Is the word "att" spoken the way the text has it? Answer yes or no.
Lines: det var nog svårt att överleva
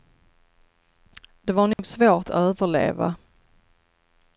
no